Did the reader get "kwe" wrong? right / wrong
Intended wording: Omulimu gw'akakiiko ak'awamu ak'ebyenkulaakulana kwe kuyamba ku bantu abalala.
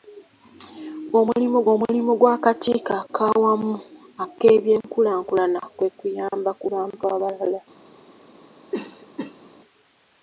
right